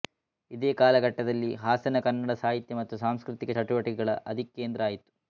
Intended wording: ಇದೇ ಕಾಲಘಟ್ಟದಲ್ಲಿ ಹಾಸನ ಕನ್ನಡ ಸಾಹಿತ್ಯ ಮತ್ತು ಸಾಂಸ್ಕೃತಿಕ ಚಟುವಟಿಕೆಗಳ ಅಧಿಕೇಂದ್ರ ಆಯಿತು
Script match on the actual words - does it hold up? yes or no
yes